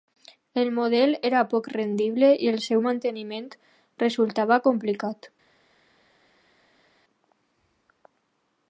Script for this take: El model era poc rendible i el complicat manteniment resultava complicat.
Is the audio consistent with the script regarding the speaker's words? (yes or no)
no